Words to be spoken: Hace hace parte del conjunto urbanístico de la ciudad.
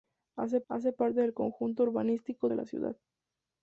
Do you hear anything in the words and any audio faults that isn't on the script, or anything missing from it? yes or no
no